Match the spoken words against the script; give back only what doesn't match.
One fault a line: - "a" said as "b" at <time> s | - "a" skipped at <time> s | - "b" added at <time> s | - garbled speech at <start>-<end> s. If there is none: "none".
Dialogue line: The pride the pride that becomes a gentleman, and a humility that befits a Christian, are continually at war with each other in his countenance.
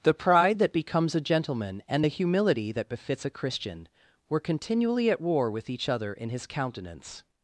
- "the pride" skipped at 0.6 s
- "a" said as "the" at 2.0 s
- "are" said as "were" at 4.3 s